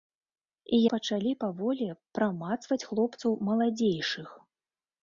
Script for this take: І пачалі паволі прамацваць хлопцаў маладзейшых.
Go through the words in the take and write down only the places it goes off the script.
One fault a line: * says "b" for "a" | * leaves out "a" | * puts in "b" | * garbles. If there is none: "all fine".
all fine